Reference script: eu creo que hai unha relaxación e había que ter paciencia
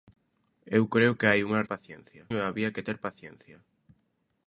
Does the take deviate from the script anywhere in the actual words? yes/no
yes